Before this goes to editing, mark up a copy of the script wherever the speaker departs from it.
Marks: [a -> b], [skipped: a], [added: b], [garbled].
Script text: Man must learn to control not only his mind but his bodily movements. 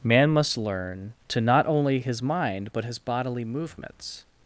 Man must learn to [skipped: control] not only his mind but his bodily movements.